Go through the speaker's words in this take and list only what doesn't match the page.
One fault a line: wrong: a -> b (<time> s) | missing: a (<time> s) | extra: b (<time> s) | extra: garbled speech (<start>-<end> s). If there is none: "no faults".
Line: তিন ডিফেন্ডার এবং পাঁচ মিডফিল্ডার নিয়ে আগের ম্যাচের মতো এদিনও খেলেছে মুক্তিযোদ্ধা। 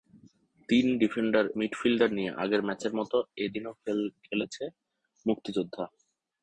missing: এবং পাঁচ (1.4 s)